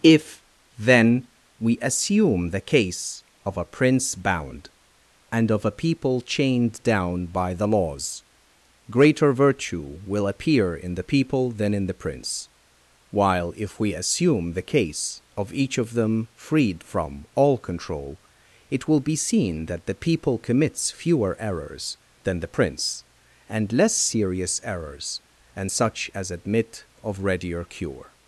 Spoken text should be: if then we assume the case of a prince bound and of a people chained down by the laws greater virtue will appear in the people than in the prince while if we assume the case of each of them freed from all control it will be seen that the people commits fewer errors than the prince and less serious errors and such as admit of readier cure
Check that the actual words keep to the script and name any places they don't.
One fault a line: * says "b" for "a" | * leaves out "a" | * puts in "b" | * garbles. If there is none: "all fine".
all fine